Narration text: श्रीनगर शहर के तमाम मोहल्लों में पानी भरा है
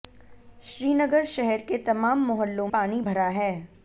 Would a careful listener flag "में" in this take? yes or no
yes